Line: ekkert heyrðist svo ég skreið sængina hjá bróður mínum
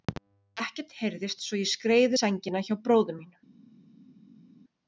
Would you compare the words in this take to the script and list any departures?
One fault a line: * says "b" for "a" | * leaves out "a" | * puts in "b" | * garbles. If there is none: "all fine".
all fine